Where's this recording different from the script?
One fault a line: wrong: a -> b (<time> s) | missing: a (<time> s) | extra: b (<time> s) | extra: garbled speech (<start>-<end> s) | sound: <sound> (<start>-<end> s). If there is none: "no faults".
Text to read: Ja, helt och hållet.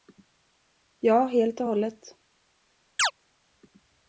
sound: chirp (3.0-3.1 s)